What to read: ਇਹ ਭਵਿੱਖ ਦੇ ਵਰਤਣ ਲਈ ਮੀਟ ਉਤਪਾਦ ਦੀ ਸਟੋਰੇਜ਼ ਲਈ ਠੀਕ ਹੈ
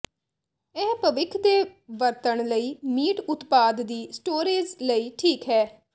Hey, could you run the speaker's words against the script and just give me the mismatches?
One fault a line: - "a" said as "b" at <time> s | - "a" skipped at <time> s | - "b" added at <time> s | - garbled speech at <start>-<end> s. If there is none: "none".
none